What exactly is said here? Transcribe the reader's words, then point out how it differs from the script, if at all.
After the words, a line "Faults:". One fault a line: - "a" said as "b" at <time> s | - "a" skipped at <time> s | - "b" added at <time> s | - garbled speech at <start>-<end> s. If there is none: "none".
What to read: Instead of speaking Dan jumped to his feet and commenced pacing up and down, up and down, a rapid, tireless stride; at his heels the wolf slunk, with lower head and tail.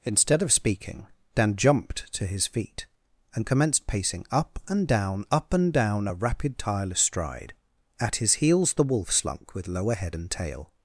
Instead of speaking Dan jumped to his feet and commenced pacing up and down, up and down, a rapid, tireless stride; at his heels the wolf slunk, with lower head and tail.
Faults:
none